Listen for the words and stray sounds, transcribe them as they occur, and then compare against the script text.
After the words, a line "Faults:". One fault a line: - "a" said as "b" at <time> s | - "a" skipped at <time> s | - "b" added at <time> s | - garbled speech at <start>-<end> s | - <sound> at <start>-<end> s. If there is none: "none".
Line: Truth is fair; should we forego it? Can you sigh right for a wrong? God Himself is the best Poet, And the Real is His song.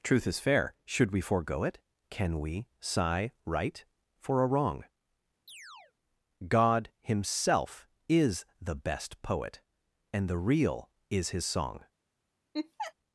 Truth is fair; should we forego it? Can we sigh right for a wrong? God Himself is the best Poet, And the Real is His song.
Faults:
- "you" said as "we" at 2.4 s
- chirp at 5.5-5.9 s
- laugh at 12.5-12.9 s